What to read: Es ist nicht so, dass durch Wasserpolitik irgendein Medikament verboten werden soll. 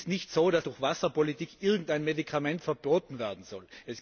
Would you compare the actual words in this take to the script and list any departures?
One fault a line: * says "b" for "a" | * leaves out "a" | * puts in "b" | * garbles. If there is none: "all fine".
all fine